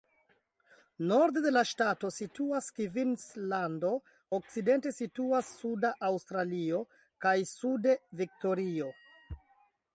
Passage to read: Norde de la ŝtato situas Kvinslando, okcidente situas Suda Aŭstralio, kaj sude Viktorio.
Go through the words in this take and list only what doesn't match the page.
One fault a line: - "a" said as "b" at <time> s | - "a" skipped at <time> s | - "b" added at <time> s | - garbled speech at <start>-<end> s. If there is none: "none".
none